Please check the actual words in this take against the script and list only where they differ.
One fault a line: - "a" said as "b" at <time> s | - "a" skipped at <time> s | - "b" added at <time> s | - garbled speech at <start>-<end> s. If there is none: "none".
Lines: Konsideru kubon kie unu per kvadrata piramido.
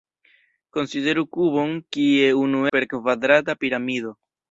none